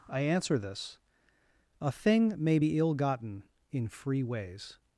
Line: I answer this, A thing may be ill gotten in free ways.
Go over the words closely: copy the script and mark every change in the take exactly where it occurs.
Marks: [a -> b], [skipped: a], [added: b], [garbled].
I answer this, A thing may be ill gotten in free ways.